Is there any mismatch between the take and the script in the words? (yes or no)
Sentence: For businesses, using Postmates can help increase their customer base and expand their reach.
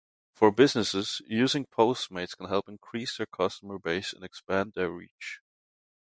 no